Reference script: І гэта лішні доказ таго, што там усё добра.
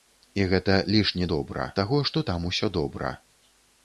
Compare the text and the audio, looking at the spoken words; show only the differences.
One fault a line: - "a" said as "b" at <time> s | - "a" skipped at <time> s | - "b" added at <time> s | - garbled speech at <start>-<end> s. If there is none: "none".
- "доказ" said as "добра" at 1.3 s